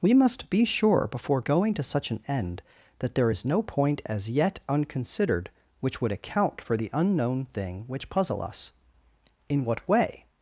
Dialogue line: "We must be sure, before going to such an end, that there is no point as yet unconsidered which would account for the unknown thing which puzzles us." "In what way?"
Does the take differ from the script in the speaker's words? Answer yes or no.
yes